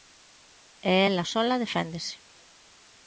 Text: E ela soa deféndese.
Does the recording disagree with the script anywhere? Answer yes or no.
no